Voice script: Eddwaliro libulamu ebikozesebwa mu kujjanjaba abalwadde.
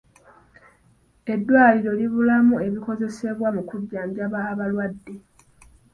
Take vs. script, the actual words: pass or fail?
pass